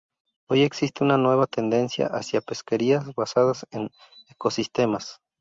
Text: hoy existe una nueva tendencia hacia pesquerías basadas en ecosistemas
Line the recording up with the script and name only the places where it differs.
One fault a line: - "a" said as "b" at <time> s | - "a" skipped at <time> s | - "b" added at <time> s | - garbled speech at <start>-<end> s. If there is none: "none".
none